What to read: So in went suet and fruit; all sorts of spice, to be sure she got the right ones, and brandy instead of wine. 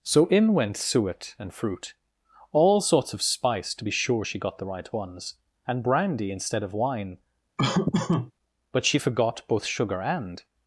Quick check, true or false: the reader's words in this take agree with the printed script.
false